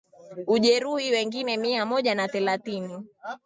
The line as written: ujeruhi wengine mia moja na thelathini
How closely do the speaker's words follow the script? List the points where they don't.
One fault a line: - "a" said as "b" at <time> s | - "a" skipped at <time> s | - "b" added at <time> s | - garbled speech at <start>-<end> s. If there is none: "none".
none